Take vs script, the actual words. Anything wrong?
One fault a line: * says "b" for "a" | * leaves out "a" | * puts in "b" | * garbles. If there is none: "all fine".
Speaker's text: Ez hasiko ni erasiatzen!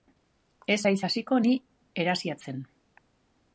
* puts in "haiz"